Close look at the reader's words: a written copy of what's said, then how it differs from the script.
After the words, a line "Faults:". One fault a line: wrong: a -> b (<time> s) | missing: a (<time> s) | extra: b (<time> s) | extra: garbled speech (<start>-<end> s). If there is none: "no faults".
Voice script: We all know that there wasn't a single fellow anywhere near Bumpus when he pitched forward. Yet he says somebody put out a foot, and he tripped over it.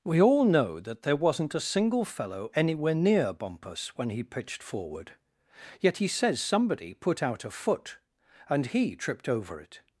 We all know that there wasn't a single fellow anywhere near Bumpus when he pitched forward. Yet he says somebody put out a foot, and he tripped over it.
Faults:
no faults